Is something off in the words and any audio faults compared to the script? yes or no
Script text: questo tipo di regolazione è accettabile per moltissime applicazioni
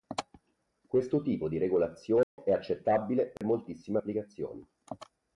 yes